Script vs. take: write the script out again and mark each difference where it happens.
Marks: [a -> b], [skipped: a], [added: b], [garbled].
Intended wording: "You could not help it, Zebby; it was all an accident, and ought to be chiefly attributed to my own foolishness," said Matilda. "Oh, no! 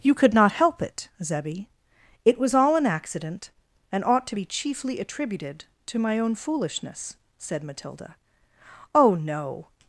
"You could not help it, Zebby; it was all an accident, and ought to be chiefly attributed to my own foolishness," said Matilda. "Oh, no!